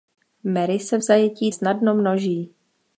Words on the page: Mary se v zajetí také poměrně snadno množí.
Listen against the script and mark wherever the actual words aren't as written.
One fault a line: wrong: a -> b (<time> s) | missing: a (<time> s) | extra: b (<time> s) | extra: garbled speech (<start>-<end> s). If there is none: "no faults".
missing: také poměrně (1.5 s)